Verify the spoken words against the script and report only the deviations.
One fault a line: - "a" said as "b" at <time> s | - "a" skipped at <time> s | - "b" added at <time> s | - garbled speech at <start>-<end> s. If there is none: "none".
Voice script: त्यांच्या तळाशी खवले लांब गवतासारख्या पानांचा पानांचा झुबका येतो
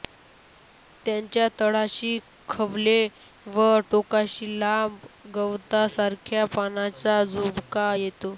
- "व टोकाशी" added at 3.5 s
- "पानांचा" skipped at 7.2 s